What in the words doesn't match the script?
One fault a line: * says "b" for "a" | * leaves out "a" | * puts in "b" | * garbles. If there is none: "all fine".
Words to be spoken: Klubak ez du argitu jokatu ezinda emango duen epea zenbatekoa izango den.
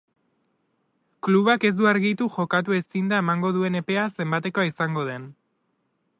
all fine